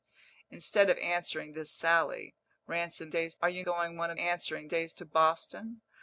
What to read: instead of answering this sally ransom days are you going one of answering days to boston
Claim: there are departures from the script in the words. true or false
false